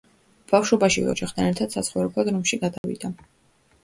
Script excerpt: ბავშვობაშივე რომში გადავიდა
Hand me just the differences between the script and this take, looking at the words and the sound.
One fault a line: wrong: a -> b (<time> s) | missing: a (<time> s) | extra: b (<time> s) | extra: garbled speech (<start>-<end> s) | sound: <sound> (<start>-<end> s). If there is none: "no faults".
extra: ოჯახთან ერთად საცხოვრებლად (1.1 s)
sound: dropout (2.8-2.8 s)